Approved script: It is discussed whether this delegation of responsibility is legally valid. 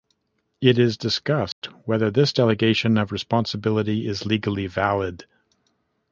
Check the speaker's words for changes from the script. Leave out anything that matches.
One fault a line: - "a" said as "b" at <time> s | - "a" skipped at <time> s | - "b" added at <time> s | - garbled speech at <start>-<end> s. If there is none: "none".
none